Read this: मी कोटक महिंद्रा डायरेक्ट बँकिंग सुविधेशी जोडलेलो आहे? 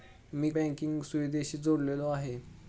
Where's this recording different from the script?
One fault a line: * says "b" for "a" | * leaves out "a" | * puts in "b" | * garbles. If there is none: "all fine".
* leaves out "कोटक महिंद्रा डायरेक्ट"